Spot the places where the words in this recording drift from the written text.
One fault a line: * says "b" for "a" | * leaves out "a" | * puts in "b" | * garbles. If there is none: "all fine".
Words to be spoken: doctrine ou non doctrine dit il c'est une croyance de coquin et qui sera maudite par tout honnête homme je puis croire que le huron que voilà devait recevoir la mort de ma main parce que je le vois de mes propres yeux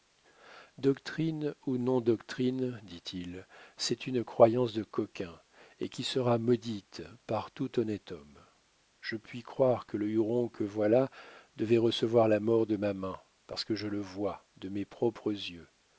all fine